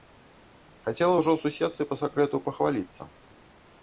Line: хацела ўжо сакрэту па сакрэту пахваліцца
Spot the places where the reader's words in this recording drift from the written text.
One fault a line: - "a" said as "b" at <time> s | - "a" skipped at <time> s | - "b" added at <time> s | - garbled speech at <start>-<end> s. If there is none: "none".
- "сакрэту" said as "суседцы" at 1.4 s